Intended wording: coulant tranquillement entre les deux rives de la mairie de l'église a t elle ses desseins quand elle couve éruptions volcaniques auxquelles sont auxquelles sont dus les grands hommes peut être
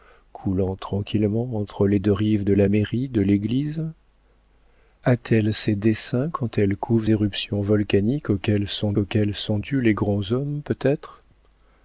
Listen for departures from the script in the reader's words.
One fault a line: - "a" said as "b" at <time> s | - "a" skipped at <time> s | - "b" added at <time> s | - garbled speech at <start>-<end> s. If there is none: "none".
none